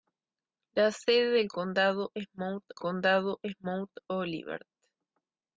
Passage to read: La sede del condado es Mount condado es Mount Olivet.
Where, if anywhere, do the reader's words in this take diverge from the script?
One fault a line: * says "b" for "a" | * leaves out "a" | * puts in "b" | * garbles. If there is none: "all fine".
all fine